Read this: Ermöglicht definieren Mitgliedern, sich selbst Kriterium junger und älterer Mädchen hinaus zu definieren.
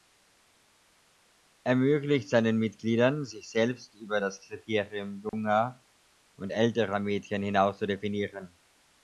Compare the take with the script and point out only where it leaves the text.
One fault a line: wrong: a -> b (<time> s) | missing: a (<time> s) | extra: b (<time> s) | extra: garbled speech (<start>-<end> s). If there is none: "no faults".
wrong: definieren -> seinen (2.3 s)
extra: über das (4.0 s)